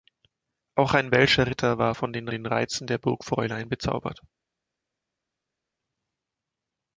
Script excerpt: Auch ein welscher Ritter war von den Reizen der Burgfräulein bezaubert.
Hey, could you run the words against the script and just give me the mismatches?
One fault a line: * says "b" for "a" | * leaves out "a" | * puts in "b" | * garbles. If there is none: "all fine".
* puts in "den"